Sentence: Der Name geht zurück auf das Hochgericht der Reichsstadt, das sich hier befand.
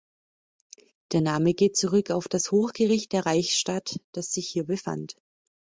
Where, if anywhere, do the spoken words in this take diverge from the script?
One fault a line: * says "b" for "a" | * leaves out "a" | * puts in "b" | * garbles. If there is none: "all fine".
all fine